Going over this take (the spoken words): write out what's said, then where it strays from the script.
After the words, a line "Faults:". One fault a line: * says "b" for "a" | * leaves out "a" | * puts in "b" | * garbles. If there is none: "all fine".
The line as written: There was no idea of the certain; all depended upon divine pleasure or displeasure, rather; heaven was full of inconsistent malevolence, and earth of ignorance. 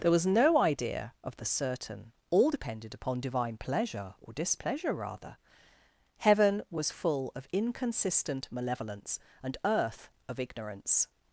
There was no idea of the certain; all depended upon divine pleasure or displeasure, rather; heaven was full of inconsistent malevolence, and earth of ignorance.
Faults:
all fine